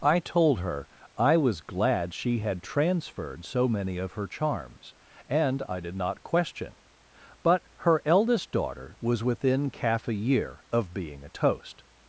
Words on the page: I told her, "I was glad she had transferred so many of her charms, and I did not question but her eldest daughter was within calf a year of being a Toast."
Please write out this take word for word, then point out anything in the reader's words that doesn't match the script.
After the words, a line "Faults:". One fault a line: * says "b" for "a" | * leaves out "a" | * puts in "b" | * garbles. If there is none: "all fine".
I told her, "I was glad she had transferred so many of her charms, and I did not question but her eldest daughter was within calf a year of being a Toast."
Faults:
all fine